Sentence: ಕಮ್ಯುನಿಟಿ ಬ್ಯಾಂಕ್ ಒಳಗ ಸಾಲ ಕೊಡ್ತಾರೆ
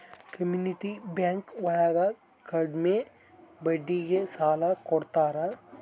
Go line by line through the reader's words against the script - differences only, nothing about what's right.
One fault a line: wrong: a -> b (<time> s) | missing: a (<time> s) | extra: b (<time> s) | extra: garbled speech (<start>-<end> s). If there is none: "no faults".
extra: ಕಡ್ಮೆ ಬಡ್ಡಿಗೆ (2.5 s)